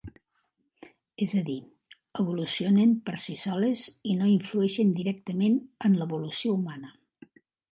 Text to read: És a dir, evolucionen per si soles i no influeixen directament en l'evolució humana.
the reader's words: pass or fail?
pass